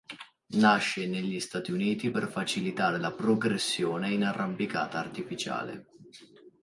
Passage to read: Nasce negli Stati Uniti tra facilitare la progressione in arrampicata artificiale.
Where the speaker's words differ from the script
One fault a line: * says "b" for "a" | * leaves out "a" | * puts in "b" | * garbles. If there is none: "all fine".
* says "per" for "tra"